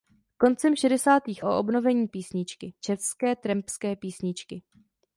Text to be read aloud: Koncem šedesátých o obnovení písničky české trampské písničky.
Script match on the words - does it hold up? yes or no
yes